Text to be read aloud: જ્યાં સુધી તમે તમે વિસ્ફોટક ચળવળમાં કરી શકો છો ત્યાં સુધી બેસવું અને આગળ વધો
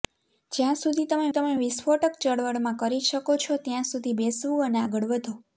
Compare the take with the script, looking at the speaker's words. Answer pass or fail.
pass